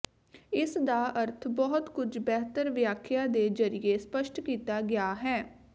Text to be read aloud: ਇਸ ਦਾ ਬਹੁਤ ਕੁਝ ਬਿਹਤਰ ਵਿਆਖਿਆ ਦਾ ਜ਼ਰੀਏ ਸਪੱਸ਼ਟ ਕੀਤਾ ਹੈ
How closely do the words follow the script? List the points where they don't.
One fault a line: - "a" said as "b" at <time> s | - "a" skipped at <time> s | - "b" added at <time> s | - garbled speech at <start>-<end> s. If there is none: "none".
- "ਅਰਥ" added at 1.2 s
- "ਦਾ" said as "ਦੇ" at 3.3 s
- "ਗਿਆ" added at 4.8 s